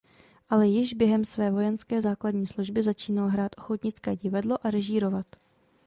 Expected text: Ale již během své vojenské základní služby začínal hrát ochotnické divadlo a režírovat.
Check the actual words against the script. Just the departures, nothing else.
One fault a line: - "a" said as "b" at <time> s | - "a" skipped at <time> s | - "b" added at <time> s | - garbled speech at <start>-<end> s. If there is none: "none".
none